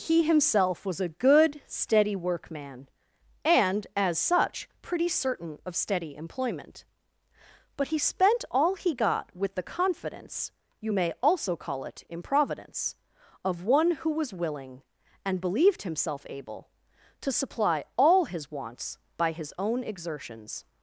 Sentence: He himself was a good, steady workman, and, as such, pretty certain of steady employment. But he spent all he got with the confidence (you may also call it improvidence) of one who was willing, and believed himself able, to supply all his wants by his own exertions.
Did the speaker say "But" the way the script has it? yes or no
yes